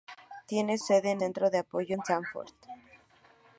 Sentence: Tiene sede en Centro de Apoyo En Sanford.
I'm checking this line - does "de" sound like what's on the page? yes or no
yes